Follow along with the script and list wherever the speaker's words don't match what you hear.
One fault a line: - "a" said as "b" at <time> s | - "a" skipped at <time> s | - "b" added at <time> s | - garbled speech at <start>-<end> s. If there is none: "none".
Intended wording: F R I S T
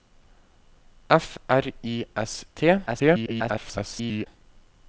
- garbled speech at 2.9-4.3 s